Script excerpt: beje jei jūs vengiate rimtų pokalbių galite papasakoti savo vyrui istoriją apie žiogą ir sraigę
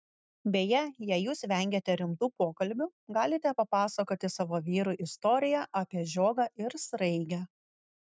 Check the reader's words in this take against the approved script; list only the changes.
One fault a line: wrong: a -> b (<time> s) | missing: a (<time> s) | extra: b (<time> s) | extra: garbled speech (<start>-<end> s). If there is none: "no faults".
no faults